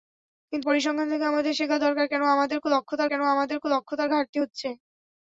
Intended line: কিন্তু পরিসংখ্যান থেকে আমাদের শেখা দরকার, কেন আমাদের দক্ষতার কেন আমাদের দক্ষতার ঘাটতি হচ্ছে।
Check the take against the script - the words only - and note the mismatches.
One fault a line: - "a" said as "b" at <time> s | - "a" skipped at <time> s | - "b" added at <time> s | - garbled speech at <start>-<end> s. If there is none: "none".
none